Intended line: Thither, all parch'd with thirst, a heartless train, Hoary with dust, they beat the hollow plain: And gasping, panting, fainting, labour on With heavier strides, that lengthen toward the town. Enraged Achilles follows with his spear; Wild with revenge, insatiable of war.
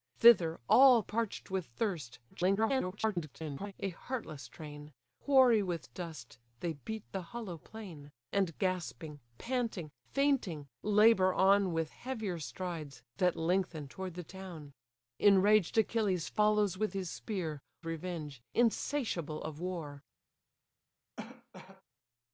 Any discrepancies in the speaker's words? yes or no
yes